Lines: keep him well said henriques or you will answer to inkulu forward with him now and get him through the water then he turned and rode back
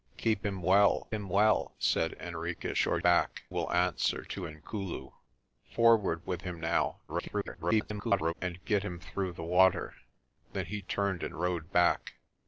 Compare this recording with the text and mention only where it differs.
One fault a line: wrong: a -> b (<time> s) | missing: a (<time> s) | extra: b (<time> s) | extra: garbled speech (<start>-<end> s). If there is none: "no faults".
extra: him well (1.1 s)
wrong: you -> back (3.0 s)
extra: garbled speech (7.1-8.3 s)